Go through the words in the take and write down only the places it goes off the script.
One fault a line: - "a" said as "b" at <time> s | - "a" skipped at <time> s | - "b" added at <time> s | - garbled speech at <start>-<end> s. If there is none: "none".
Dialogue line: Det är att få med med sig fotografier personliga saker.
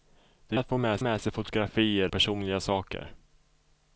none